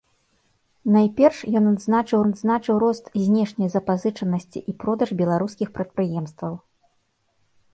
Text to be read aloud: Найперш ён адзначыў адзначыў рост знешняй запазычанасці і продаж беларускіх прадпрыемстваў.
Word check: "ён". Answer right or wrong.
right